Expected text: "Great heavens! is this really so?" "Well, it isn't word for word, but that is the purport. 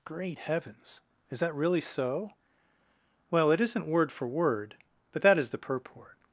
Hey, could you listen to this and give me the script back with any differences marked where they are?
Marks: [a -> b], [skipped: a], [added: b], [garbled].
"Great heavens! is [this -> that] really so?" "Well, it isn't word for word, but that is the purport.